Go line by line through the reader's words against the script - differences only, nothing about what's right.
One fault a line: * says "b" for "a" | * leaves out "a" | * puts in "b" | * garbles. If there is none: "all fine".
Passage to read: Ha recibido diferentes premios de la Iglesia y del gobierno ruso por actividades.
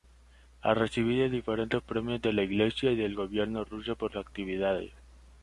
all fine